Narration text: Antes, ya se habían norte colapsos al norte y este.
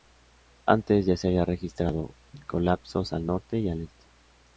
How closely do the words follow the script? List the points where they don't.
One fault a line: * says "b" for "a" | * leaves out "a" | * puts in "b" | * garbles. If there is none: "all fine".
* says "registrado" for "norte"
* puts in "al"